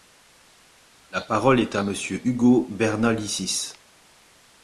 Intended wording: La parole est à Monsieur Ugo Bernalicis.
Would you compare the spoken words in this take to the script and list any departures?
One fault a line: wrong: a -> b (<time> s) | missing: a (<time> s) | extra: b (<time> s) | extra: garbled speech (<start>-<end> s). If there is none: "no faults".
no faults